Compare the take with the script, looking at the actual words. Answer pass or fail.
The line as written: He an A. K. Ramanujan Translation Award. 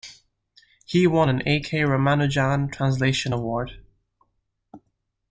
fail